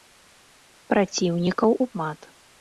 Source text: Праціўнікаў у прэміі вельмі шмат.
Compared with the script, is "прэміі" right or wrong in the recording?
wrong